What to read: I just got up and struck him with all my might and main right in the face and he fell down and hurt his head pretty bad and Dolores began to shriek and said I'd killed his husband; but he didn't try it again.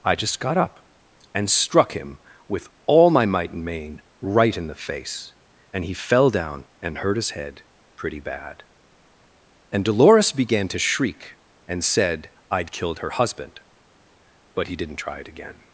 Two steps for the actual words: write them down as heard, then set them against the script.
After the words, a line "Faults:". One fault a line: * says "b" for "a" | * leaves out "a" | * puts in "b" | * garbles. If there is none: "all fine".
I just got up and struck him with all my might and main right in the face and he fell down and hurt his head pretty bad and Dolores began to shriek and said I'd killed her husband; but he didn't try it again.
Faults:
* says "her" for "his"